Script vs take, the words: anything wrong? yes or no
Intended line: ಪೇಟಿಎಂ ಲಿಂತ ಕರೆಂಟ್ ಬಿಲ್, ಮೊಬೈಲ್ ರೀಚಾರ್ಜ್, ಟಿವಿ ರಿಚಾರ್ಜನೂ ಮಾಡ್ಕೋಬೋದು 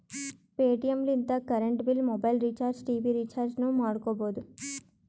no